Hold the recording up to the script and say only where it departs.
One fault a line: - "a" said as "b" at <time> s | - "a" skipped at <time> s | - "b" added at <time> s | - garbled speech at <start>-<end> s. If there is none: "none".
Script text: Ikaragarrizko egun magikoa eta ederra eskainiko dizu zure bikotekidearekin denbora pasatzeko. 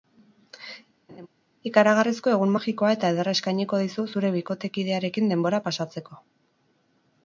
none